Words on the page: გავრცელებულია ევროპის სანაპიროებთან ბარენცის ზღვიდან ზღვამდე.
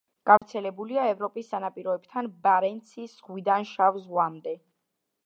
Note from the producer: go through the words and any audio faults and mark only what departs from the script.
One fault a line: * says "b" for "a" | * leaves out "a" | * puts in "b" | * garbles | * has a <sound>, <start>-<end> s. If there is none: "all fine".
* has a dropout, 0.4-0.4 s
* puts in "შავ"